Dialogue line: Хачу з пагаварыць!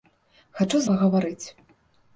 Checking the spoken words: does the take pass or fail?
pass